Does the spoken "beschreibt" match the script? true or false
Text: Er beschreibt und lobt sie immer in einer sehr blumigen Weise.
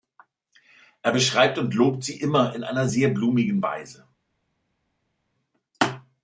true